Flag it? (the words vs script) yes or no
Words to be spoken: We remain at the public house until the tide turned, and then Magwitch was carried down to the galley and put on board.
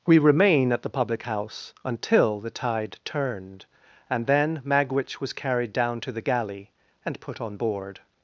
no